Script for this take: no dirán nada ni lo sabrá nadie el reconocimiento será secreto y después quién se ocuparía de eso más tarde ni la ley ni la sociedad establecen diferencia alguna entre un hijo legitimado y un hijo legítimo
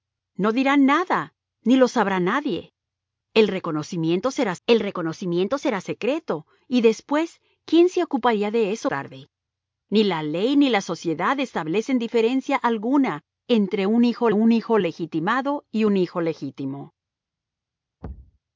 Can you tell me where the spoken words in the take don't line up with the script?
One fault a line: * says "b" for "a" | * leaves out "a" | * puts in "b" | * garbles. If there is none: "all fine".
* puts in "el reconocimiento será"
* leaves out "más"
* puts in "un hijo"